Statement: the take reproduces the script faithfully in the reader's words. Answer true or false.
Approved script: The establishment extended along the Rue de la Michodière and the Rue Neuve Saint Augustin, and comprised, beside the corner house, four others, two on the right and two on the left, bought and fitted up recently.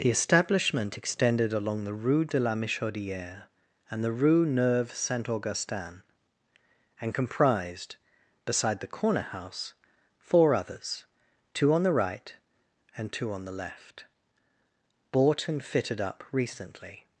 true